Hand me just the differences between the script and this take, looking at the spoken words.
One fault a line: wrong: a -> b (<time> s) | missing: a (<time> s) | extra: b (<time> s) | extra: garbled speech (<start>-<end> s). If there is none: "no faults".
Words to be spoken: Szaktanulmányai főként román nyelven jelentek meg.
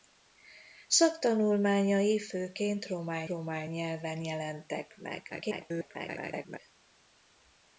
extra: román (3.3 s)
extra: garbled speech (5.3-6.6 s)